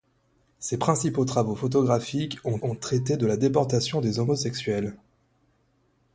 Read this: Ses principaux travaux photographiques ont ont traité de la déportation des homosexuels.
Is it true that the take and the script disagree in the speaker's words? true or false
false